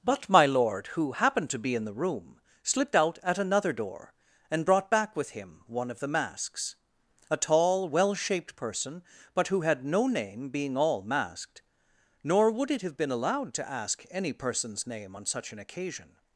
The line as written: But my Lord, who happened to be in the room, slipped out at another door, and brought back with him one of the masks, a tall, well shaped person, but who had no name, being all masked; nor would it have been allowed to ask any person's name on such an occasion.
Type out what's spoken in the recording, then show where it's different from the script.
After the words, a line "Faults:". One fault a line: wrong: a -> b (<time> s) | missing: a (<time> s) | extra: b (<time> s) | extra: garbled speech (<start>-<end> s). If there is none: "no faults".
But my Lord, who happened to be in the room, slipped out at another door, and brought back with him one of the masks, a tall, well shaped person, but who had no name, being all masked; nor would it have been allowed to ask any person's name on such an occasion.
Faults:
no faults